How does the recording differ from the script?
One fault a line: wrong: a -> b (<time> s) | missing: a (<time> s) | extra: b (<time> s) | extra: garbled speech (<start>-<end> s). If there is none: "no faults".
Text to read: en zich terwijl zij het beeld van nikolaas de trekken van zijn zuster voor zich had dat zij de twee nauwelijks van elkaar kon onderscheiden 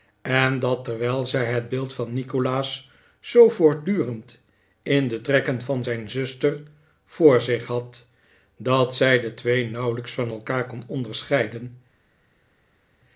wrong: zich -> dat (0.6 s)
extra: zoo voortdurend in (3.2 s)